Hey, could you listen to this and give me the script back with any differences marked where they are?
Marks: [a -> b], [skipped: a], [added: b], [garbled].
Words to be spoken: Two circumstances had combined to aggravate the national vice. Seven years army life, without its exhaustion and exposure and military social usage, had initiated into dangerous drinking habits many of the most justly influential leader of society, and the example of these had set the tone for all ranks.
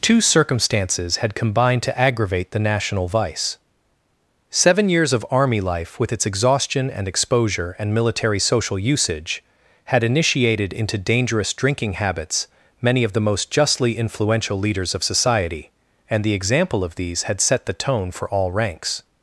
Two circumstances had combined to aggravate the national vice. Seven years [added: of] army life, [without -> with] its exhaustion and exposure and military social usage, had initiated into dangerous drinking habits many of the most justly influential [leader -> leaders] of society, and the example of these had set the tone for all ranks.